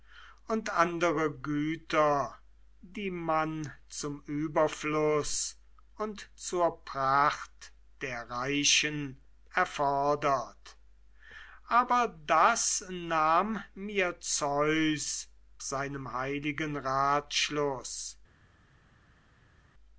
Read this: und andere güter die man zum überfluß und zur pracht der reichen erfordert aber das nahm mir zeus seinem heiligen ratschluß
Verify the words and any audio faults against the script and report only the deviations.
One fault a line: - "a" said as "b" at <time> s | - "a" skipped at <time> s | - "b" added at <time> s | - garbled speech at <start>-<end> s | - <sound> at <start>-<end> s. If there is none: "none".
none